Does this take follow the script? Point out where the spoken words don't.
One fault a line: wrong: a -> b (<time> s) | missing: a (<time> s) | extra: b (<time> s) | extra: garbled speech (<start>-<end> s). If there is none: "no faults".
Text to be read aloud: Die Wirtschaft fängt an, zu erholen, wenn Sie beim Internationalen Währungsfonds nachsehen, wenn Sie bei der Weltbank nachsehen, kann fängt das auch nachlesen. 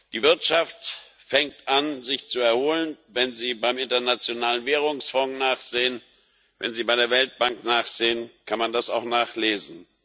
extra: sich (2.0 s)
wrong: fängt -> man (8.6 s)